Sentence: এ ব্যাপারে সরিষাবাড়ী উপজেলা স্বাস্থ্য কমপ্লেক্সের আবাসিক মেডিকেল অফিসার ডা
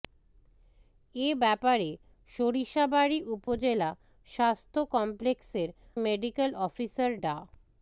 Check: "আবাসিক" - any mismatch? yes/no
yes